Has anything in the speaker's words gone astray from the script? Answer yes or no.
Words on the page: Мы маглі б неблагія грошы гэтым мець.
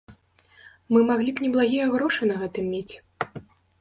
yes